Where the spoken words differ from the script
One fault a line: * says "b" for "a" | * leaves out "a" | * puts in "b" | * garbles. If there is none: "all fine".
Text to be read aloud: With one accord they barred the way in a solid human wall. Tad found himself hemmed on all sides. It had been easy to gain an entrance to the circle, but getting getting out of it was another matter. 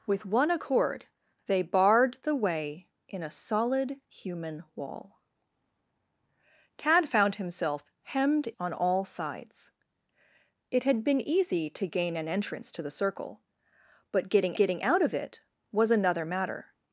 all fine